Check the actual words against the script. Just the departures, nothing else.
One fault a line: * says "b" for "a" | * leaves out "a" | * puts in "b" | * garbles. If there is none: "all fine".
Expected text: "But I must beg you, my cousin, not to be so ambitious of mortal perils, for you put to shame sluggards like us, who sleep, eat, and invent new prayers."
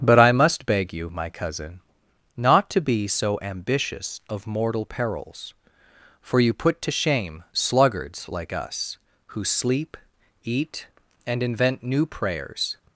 all fine